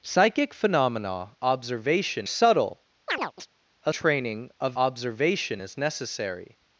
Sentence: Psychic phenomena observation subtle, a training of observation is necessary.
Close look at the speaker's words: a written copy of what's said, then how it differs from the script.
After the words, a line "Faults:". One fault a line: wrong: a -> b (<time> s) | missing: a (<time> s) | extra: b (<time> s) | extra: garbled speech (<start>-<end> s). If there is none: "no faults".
Psychic phenomena observation subtle, a training of observation is necessary.
Faults:
no faults